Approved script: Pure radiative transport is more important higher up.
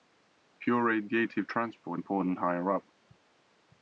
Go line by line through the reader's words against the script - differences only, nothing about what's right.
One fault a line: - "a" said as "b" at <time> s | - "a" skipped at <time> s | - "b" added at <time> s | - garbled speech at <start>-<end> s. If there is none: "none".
- "is more" skipped at 2.0 s